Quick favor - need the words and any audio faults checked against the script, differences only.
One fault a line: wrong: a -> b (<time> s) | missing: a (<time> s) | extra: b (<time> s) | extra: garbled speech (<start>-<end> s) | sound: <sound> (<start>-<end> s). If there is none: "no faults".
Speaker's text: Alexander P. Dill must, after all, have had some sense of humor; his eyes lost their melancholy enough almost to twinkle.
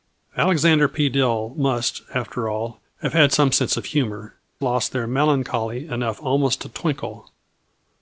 missing: his eyes (4.3 s)